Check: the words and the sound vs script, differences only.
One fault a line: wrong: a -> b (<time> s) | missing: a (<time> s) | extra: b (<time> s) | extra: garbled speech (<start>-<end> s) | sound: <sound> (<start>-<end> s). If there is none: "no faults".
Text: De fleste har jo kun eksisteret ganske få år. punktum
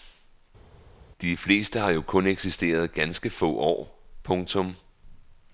no faults